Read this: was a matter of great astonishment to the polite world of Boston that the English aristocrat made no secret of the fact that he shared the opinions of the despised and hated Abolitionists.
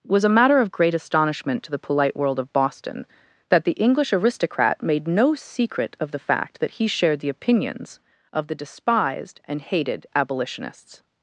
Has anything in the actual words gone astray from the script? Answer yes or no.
no